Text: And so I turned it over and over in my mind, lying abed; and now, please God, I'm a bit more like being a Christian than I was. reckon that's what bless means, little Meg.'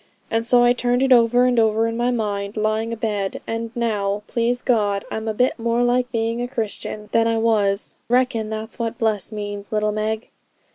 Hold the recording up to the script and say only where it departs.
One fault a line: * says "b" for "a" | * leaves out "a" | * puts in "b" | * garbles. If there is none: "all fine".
all fine